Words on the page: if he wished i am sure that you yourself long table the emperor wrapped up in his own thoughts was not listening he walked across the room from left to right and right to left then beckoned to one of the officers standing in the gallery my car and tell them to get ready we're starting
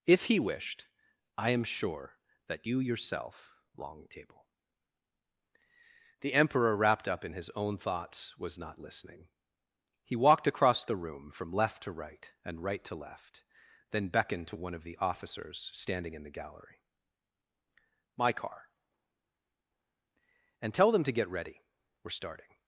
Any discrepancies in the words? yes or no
no